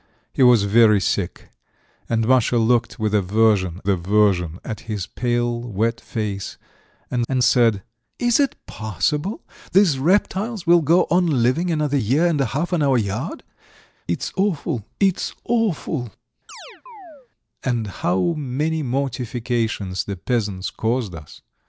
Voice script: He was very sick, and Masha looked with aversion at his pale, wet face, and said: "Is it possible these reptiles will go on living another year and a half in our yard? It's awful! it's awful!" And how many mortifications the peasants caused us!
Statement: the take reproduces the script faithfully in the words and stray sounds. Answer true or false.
false